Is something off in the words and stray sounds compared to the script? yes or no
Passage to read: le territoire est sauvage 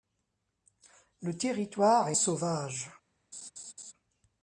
yes